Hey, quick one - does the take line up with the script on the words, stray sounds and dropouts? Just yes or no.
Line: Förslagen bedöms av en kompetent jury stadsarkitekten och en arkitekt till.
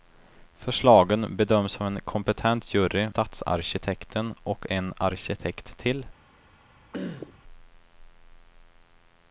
no